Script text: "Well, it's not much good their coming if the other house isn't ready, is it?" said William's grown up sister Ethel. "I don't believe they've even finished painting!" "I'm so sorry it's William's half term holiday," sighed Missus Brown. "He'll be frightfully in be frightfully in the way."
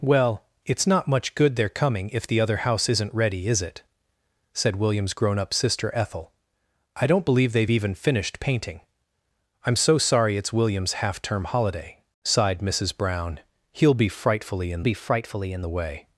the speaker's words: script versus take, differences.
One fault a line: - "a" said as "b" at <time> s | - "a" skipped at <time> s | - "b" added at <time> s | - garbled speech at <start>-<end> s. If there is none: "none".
none